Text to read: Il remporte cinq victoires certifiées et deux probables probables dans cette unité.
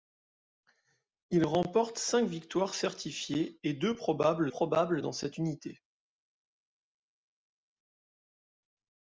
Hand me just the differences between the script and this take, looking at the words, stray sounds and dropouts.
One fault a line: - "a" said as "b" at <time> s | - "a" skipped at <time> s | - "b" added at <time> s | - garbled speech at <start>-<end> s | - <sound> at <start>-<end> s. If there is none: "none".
none